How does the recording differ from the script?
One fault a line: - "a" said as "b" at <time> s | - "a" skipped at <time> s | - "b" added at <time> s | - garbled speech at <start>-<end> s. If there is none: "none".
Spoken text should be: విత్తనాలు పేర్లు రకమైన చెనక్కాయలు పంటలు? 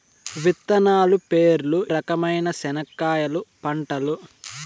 none